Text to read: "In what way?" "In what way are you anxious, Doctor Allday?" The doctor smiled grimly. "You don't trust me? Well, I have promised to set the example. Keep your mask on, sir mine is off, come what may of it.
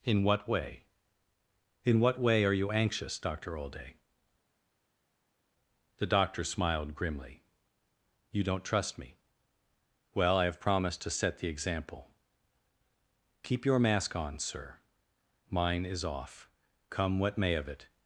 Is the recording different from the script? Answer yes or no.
no